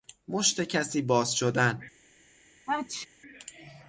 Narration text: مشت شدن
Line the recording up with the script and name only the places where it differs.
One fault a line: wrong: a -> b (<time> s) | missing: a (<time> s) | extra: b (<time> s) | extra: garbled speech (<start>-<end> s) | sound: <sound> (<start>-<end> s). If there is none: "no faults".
extra: کسی باز (0.6 s)
sound: sneeze (2.7-3.1 s)